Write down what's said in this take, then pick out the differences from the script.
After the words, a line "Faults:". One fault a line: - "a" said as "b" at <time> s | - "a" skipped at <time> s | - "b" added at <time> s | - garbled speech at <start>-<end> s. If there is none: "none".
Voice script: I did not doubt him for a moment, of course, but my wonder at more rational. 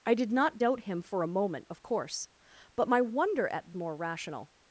I did not doubt him for a moment, of course, but my wonder at more rational.
Faults:
none